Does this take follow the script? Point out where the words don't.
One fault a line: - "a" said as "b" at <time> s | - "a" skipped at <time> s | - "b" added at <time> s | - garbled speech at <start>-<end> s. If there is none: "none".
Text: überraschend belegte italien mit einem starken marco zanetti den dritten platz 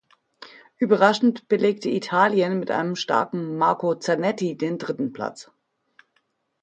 none